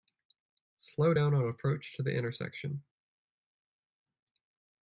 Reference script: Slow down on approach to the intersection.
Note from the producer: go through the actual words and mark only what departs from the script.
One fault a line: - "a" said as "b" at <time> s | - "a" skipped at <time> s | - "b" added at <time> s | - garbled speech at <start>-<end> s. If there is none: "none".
none